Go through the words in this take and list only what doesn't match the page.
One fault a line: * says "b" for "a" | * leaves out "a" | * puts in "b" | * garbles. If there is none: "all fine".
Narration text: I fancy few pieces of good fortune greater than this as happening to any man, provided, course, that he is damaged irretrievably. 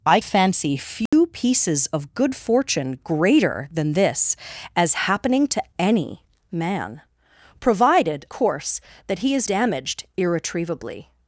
all fine